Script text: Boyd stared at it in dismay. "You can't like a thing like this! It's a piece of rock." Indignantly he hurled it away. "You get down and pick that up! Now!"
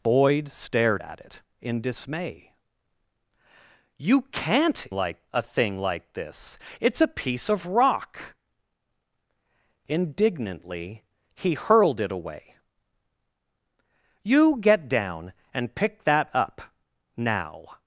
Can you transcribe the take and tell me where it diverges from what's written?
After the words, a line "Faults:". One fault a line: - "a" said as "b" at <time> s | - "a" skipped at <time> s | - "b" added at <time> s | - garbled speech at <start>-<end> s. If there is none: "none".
Boyd stared at it in dismay. "You can't like a thing like this! It's a piece of rock." Indignantly he hurled it away. "You get down and pick that up! Now!"
Faults:
none